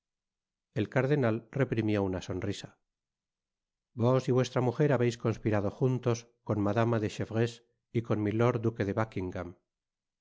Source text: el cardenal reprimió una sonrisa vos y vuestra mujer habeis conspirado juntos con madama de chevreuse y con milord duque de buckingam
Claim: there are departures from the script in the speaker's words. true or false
false